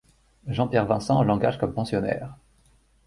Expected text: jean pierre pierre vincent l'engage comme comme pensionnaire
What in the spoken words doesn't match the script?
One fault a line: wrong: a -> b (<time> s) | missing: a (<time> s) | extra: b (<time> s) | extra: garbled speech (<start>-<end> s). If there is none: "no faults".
missing: pierre (0.9 s)
missing: comme (1.8 s)